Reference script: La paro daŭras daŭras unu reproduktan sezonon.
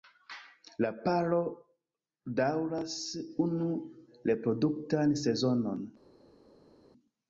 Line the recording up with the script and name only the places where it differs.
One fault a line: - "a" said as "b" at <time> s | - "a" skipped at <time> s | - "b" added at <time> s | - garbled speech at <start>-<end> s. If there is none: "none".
- "daŭras" skipped at 3.0 s